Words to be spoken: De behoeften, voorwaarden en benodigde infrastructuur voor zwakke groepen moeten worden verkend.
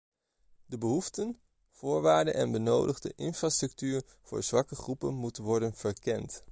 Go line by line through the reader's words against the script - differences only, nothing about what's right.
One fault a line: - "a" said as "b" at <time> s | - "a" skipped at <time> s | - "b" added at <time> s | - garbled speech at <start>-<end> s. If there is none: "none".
none